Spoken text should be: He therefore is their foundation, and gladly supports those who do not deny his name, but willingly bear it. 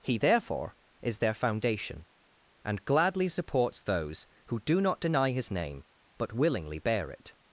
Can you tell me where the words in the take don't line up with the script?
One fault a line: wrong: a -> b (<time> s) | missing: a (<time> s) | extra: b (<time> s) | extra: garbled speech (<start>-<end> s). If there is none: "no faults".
no faults